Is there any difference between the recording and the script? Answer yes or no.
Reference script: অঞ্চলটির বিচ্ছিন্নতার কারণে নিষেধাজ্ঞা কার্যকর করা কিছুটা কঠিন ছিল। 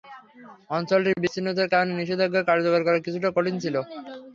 no